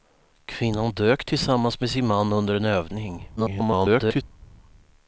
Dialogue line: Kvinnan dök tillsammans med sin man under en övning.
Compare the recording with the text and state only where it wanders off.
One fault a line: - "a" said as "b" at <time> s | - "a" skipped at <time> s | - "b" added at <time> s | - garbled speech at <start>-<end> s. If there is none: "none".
- garbled speech at 3.4-4.2 s